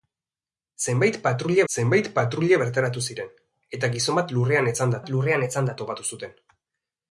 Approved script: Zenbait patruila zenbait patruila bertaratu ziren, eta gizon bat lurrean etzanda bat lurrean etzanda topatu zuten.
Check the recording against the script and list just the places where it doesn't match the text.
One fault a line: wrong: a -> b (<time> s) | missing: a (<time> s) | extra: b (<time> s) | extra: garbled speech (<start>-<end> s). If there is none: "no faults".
no faults